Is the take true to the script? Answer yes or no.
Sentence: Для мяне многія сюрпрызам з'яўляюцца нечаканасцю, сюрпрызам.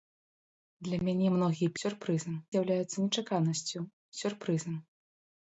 yes